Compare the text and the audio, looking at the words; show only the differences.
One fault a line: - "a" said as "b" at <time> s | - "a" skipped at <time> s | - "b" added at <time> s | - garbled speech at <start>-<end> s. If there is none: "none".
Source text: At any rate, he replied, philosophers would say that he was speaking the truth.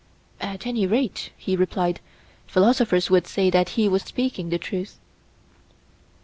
none